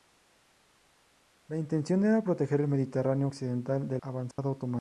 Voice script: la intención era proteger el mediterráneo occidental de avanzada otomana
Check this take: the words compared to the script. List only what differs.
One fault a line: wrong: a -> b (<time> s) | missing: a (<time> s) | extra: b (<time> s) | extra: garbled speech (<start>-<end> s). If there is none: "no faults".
no faults